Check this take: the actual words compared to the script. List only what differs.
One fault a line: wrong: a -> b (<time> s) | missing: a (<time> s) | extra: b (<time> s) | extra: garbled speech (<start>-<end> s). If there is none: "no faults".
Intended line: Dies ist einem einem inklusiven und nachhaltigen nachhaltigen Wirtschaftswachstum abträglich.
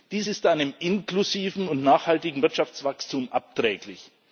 missing: einem (0.7 s)
missing: nachhaltigen (2.4 s)